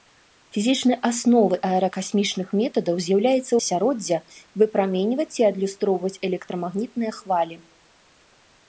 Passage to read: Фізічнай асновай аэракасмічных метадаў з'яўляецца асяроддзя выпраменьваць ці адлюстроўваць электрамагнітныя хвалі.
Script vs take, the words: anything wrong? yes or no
no